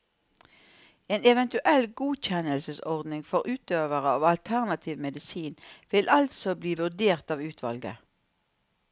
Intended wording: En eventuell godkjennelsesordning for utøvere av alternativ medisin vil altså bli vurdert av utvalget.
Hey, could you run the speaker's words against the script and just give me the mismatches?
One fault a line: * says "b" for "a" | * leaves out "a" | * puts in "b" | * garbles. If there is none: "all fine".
all fine